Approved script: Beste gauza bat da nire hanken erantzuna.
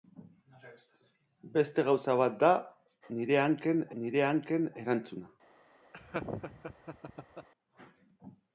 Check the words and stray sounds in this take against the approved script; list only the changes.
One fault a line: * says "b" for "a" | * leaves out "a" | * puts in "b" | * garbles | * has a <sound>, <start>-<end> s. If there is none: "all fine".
* puts in "nire hanken"
* has a laugh, 5.9-7.5 s